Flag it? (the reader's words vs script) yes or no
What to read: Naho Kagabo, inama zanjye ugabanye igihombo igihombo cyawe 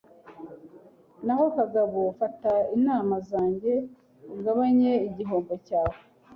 yes